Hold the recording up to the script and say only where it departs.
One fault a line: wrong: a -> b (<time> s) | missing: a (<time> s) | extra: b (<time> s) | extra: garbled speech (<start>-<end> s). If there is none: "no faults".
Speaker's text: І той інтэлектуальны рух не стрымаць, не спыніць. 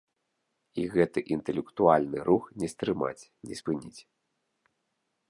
wrong: той -> гэты (0.9 s)